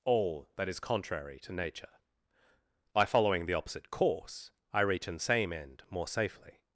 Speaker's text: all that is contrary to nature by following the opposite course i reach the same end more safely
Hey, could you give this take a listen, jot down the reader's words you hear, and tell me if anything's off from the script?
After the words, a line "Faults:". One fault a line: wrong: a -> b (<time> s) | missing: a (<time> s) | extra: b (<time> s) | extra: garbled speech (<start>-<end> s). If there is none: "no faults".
all that is contrary to nature by following the opposite course i reach an same end more safely
Faults:
wrong: the -> an (5.1 s)